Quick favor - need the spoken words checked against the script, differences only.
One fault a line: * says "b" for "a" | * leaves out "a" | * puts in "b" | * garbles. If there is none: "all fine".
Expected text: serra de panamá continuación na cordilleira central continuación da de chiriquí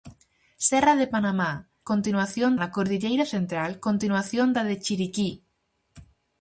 all fine